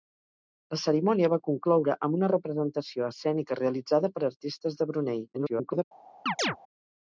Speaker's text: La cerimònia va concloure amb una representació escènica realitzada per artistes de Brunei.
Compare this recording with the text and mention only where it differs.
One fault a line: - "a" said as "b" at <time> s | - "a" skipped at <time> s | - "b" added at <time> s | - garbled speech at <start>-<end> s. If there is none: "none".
- garbled speech at 5.3-5.8 s